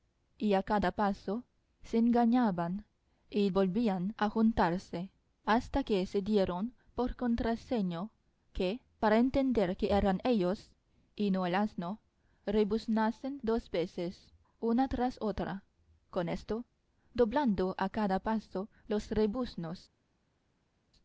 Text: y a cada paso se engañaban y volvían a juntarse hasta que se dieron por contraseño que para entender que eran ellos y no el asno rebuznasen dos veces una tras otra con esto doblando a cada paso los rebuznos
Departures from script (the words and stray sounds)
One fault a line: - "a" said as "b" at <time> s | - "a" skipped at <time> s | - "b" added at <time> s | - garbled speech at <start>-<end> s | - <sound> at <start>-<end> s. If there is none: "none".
none